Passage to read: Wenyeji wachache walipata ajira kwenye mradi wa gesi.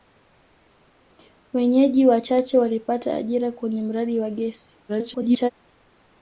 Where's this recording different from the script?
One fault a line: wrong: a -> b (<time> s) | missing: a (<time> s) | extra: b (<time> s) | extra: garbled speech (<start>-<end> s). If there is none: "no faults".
extra: garbled speech (4.9-5.5 s)